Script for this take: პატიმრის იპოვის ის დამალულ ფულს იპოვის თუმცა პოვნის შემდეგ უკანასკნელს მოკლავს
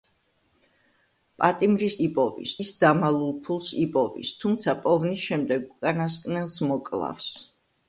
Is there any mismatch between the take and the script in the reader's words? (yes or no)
no